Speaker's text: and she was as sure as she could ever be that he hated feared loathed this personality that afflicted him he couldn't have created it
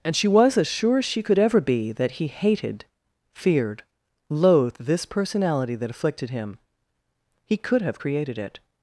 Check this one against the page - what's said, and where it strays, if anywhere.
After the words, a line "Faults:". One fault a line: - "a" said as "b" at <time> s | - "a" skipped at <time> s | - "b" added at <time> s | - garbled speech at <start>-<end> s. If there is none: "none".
and she was as sure as she could ever be that he hated feared loathed this personality that afflicted him he could have created it
Faults:
- "couldn't" said as "could" at 7.6 s